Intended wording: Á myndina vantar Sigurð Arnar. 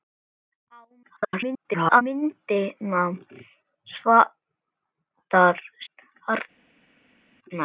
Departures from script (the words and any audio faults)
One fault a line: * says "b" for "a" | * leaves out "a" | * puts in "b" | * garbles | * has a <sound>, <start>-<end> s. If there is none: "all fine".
* garbles
* leaves out "Sigurð"